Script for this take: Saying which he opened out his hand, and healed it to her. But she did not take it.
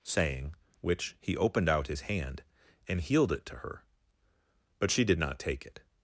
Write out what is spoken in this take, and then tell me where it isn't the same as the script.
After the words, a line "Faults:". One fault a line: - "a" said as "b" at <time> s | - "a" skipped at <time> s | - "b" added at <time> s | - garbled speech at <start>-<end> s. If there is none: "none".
Saying which he opened out his hand, and healed it to her. But she did not take it.
Faults:
none